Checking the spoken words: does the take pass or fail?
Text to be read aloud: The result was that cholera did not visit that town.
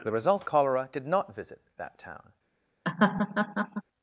fail